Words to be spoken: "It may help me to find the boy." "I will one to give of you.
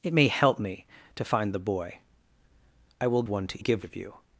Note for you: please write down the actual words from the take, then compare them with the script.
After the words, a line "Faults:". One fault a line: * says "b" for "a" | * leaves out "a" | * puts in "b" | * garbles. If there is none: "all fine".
"It may help me to find the boy." "I will one to give of you.
Faults:
all fine